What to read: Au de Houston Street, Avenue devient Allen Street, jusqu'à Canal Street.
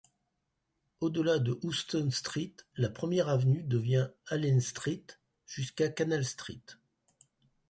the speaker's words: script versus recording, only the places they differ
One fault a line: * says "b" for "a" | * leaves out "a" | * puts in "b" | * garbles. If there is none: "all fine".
* puts in "delà"
* puts in "la Première"